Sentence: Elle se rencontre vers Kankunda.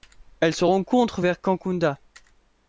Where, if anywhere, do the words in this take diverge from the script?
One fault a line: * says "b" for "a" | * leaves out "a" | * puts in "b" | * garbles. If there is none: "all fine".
all fine